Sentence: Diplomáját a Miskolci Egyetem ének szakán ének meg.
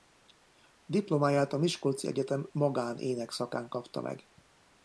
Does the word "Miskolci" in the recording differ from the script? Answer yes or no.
no